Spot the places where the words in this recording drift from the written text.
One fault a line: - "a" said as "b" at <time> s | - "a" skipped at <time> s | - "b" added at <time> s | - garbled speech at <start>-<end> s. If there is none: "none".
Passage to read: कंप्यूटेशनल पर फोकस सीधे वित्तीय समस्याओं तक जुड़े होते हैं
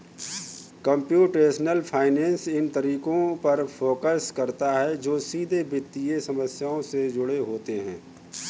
- "फाइनेंस इन तरीकों" added at 1.8 s
- "करता है जो" added at 4.4 s
- "तक" said as "से" at 6.8 s